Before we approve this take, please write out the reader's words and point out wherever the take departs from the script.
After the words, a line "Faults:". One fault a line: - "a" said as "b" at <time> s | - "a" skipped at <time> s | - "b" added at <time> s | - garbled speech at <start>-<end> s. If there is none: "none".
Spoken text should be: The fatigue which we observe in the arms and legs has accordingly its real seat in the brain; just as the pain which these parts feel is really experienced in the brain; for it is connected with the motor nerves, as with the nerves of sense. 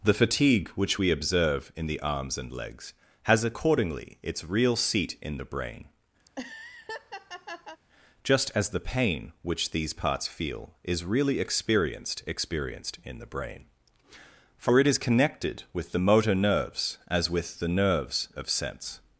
The fatigue which we observe in the arms and legs has accordingly its real seat in the brain; just as the pain which these parts feel is really experienced experienced in the brain; for it is connected with the motor nerves, as with the nerves of sense.
Faults:
- "experienced" added at 12.3 s